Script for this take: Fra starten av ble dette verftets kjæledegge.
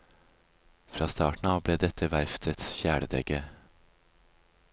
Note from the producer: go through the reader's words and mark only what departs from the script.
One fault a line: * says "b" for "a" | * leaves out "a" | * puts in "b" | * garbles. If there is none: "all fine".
all fine